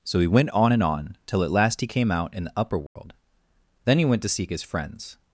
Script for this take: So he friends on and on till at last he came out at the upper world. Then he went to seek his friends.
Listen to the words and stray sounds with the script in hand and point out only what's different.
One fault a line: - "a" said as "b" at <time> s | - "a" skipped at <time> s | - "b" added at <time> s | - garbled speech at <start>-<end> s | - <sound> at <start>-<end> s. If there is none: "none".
- "friends" said as "went" at 0.3 s
- "at" said as "in" at 2.3 s
- dropout at 2.9-3.0 s